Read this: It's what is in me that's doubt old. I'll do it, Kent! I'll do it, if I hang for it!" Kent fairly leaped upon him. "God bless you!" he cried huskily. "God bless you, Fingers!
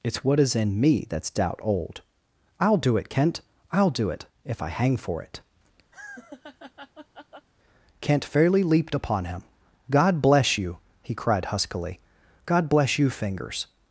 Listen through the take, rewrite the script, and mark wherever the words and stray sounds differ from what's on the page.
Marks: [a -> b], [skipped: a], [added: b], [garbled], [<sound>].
It's what is in me that's doubt old. I'll do it, Kent! I'll do it, if I hang for it!" [laugh] Kent fairly leaped upon him. "God bless you!" he cried huskily. "God bless you, Fingers!